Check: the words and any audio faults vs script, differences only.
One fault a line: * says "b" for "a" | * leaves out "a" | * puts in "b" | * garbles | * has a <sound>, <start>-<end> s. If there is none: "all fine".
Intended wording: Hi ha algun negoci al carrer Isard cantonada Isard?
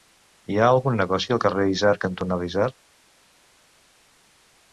all fine